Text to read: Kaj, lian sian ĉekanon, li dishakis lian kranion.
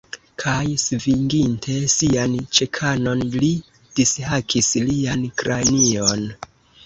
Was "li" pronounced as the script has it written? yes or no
yes